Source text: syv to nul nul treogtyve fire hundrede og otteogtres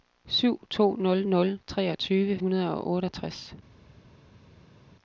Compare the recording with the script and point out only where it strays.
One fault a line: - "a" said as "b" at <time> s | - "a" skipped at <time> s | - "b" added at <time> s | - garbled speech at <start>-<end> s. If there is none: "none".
- "fire" skipped at 2.4 s